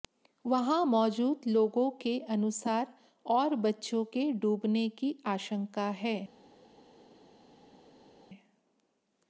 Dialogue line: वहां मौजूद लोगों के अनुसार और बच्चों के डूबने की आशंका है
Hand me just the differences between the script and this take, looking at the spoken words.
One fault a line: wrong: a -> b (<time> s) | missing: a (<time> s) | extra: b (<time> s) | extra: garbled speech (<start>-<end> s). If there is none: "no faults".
no faults